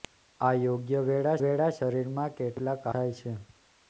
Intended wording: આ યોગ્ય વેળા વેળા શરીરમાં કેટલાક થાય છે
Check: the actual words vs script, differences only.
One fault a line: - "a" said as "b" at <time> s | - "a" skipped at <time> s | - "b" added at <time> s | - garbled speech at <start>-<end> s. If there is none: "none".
none